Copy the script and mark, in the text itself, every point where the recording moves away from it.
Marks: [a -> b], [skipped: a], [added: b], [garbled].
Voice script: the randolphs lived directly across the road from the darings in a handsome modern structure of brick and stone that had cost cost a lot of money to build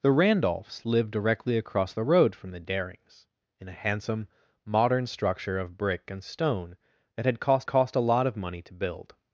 the randolphs lived directly across the road from the darings in a handsome modern structure of brick and stone that had cost cost a lot of money to build